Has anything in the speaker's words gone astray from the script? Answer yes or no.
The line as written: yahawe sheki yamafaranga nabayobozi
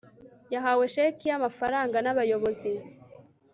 no